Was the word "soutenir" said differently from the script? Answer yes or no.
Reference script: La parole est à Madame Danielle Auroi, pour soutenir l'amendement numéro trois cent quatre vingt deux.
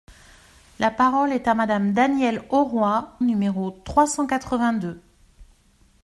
yes